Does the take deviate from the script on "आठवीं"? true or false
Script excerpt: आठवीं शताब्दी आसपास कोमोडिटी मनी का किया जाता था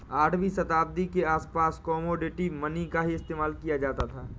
false